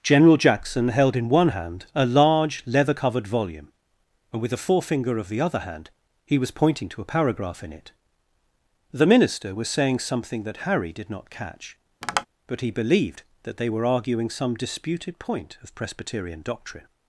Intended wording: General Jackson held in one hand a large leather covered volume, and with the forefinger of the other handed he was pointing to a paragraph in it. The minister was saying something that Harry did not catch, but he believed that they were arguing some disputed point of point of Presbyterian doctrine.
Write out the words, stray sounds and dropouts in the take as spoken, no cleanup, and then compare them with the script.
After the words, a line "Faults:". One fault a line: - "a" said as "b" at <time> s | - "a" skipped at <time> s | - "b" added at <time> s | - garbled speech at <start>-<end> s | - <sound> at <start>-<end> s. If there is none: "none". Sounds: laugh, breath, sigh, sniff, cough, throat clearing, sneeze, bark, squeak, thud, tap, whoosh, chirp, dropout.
General Jackson held in one hand a large leather covered volume, and with the forefinger of the other hand he was pointing to a paragraph in it. The minister was saying something that Harry did not catch, but he believed that they were arguing some disputed point of Presbyterian doctrine.
Faults:
- "handed" said as "hand" at 5.6 s
- tap at 12.0-12.3 s
- "point of" skipped at 15.7 s